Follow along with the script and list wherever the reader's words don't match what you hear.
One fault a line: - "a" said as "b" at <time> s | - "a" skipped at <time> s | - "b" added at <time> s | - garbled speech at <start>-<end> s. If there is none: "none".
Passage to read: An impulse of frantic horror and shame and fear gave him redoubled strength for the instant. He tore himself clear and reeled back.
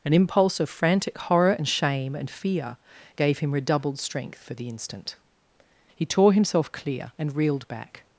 none